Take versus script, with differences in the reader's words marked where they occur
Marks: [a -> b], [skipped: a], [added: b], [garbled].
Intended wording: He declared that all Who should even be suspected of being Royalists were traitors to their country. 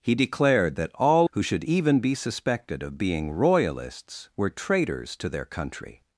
He declared that all Who should even be suspected of being Royalists were traitors to their country.